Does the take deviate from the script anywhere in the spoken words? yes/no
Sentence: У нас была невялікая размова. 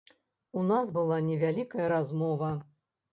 no